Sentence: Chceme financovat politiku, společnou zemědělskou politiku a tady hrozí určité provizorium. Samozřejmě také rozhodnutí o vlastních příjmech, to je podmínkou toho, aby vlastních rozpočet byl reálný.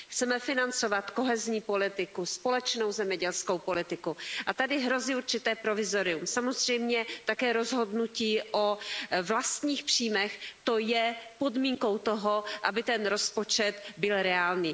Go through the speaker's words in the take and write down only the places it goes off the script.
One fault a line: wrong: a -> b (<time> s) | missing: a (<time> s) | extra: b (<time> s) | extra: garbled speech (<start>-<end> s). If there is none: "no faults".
extra: kohezní (1.1 s)
wrong: vlastních -> ten (12.8 s)